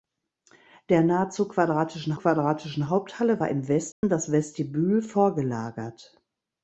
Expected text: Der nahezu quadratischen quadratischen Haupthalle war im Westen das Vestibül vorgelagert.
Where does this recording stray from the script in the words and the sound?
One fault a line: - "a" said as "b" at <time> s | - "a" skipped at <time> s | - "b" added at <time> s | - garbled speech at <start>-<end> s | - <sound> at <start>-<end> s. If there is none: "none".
- dropout at 3.9-4.0 s